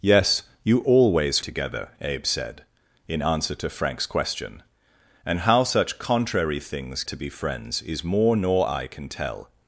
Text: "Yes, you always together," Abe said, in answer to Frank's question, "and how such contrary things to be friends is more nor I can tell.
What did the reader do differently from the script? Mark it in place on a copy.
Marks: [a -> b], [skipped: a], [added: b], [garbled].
"Yes, you always together," Abe said, in answer to Frank's question, "and how such contrary things to be friends is more nor I can tell.